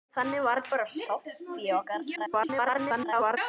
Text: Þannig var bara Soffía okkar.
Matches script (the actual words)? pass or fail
fail